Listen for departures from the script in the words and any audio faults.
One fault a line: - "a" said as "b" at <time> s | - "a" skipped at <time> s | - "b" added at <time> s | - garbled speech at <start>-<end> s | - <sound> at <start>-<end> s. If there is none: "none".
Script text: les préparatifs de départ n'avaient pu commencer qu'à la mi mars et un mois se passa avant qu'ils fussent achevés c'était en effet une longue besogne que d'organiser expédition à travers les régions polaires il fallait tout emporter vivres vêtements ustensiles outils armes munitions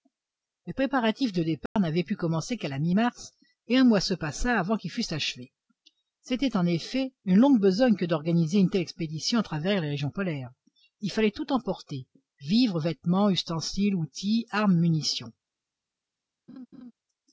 - dropout at 1.7-1.8 s
- "une telle" added at 8.6 s
- laugh at 16.5-16.9 s